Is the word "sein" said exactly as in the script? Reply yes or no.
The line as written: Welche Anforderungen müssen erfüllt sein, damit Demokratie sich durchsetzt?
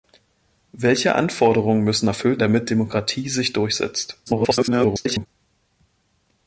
no